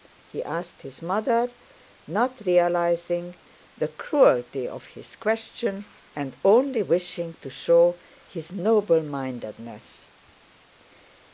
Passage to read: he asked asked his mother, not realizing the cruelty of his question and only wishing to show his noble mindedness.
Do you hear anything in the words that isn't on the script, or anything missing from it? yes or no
yes